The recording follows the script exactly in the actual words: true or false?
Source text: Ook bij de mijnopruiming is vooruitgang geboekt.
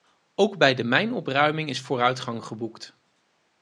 true